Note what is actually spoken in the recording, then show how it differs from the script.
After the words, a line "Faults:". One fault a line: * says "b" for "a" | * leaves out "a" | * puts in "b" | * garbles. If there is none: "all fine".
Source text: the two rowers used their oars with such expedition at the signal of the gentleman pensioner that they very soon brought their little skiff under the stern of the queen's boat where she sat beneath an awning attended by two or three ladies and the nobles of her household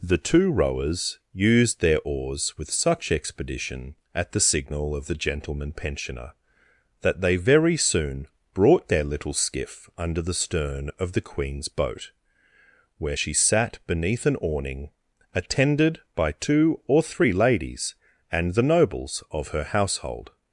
the two rowers used their oars with such expedition at the signal of the gentleman pensioner that they very soon brought their little skiff under the stern of the queen's boat where she sat beneath an awning attended by two or three ladies and the nobles of her household
Faults:
all fine